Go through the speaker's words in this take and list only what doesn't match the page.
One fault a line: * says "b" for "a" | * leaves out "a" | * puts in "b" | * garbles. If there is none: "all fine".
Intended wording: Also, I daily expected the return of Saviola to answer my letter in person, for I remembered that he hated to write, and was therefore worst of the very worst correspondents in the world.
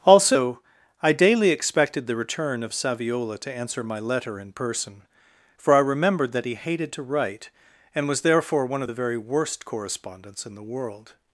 * says "one" for "worst"